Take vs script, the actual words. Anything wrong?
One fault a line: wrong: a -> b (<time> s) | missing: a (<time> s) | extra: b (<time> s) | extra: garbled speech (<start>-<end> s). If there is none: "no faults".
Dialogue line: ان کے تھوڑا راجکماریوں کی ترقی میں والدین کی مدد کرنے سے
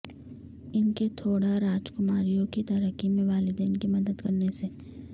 no faults